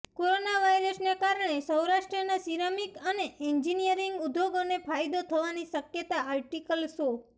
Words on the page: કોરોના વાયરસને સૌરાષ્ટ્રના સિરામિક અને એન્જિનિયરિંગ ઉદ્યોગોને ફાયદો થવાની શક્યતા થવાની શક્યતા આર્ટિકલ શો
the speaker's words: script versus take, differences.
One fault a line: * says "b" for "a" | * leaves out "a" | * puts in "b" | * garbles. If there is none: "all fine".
* puts in "કારણે"
* leaves out "થવાની શક્યતા"